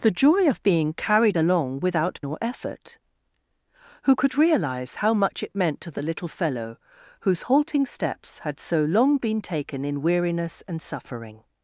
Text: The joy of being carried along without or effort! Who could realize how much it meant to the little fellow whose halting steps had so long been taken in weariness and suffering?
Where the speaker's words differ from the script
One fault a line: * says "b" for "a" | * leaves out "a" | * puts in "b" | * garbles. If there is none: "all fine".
all fine